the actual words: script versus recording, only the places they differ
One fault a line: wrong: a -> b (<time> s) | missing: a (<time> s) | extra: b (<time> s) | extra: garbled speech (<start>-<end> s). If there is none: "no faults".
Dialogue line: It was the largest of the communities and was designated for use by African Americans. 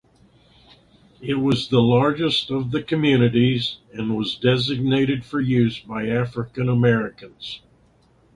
no faults